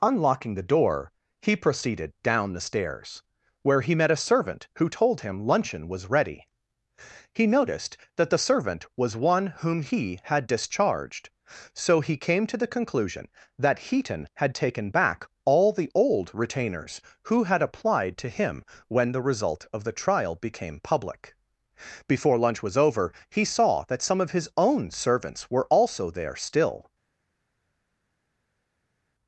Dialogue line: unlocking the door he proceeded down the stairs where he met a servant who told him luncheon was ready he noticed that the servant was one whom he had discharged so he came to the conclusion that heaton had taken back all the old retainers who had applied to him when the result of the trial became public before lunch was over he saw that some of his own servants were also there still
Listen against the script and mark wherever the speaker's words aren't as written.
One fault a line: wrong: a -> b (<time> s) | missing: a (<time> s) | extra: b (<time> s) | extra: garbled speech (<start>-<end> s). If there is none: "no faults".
no faults